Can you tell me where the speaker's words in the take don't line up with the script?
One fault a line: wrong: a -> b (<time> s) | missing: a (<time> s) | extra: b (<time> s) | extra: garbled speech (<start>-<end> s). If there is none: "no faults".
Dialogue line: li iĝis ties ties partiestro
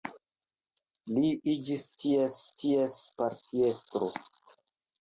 no faults